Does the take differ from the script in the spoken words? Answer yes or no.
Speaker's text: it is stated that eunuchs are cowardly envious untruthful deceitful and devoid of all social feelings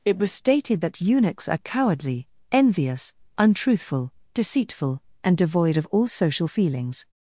yes